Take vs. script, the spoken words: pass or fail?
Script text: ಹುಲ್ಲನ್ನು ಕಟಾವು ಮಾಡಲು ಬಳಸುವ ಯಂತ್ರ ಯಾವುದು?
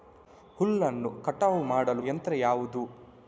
fail